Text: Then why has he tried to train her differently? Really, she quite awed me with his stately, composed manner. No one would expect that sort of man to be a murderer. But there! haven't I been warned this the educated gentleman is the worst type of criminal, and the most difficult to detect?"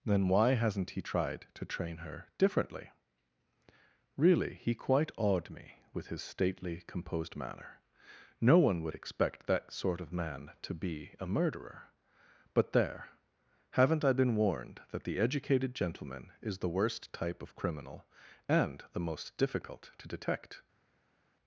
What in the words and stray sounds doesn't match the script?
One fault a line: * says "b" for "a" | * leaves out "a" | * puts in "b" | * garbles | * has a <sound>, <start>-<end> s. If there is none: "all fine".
* says "hasn't" for "has"
* says "he" for "she"
* says "that" for "this"